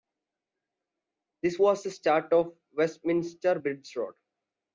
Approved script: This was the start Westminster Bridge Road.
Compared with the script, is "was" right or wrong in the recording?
right